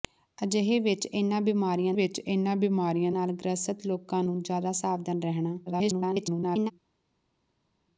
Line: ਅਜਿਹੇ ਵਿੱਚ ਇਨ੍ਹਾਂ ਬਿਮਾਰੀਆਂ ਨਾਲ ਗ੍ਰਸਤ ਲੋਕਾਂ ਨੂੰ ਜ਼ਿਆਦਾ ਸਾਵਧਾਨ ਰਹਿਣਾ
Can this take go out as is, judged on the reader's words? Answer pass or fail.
fail